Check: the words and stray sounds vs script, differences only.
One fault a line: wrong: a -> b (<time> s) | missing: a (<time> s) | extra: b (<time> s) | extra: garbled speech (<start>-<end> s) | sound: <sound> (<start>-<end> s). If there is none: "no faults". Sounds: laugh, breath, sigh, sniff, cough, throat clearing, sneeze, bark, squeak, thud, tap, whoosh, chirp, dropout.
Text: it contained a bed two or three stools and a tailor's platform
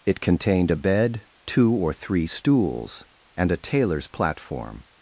no faults